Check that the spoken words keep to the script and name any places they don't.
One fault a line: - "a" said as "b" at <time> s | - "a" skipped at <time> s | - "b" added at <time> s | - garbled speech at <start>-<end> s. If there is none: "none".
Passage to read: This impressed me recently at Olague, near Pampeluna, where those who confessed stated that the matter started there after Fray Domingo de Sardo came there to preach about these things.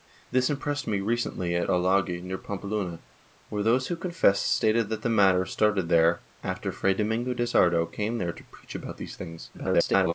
- garbled speech at 9.5-10.1 s